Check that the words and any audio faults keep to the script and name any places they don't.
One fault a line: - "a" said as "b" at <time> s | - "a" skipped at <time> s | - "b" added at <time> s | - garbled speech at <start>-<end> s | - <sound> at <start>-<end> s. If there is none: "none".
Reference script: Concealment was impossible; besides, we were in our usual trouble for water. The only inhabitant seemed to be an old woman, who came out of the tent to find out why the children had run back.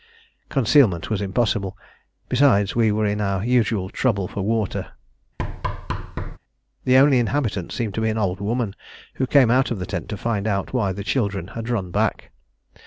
- thud at 5.4-6.4 s